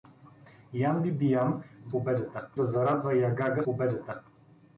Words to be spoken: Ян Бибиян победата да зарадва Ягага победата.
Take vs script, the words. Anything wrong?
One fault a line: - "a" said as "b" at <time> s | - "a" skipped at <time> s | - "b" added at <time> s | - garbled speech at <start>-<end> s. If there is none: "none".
none